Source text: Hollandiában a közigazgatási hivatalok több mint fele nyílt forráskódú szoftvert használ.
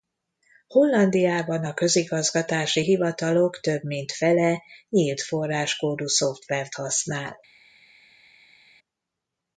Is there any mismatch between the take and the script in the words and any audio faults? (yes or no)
no